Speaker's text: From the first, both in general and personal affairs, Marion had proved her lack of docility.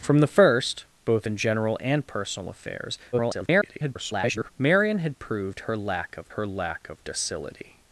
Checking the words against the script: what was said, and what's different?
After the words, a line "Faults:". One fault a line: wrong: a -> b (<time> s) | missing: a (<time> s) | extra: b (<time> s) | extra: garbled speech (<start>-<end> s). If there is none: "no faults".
From the first, both in general and personal affairs, [garbled] Marion had proved her lack of her lack of docility.
Faults:
extra: garbled speech (3.1-4.5 s)
extra: her lack of (6.3 s)